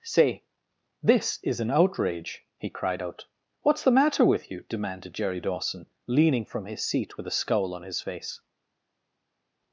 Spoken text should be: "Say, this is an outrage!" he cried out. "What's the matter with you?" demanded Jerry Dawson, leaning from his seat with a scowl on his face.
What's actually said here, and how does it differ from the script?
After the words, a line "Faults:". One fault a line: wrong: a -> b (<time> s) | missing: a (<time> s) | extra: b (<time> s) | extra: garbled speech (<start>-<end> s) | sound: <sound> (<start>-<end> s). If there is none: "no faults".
"Say, this is an outrage!" he cried out. "What's the matter with you?" demanded Jerry Dawson, leaning from his seat with a scowl on his face.
Faults:
no faults